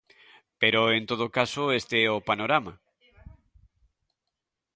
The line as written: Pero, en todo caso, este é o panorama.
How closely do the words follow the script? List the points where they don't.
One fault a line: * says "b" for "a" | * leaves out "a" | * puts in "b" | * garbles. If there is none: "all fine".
all fine